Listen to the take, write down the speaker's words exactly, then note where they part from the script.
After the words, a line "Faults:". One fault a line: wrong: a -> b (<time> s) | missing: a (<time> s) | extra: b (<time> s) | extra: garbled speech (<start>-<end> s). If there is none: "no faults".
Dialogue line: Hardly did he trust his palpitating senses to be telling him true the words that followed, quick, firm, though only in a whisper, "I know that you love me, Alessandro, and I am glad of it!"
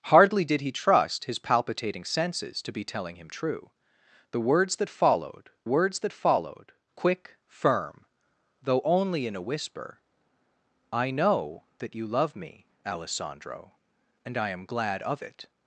Hardly did he trust his palpitating senses to be telling him true the words that followed words that followed, quick, firm, though only in a whisper, "I know that you love me, Alessandro, and I am glad of it!"
Faults:
extra: words that followed (5.6 s)